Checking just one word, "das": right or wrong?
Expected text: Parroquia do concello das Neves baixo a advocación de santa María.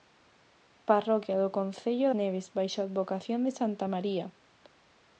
wrong